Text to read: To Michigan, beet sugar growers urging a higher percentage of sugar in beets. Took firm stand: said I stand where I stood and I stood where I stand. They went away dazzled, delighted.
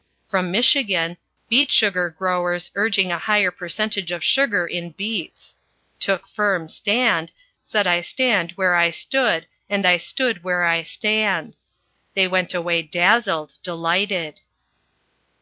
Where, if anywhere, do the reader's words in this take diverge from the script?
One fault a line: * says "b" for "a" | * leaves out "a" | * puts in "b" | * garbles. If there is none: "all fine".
* says "From" for "To"